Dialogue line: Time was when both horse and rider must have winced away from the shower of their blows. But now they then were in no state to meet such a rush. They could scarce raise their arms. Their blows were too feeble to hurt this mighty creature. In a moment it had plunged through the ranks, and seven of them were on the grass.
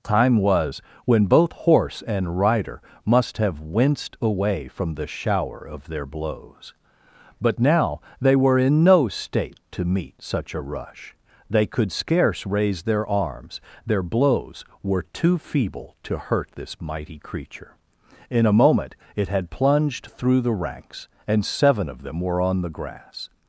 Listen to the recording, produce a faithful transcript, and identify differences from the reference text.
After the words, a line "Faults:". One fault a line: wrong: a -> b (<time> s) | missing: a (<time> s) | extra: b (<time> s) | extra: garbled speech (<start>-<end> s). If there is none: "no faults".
Time was when both horse and rider must have winced away from the shower of their blows. But now they were in no state to meet such a rush. They could scarce raise their arms. Their blows were too feeble to hurt this mighty creature. In a moment it had plunged through the ranks, and seven of them were on the grass.
Faults:
missing: then (8.3 s)